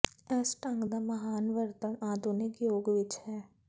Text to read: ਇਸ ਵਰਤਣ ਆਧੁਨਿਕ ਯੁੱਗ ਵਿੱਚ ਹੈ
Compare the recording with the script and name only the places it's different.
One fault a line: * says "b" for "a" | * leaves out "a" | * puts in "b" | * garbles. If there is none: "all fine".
* puts in "ਢੰਗ ਦਾ ਮਹਾਨ"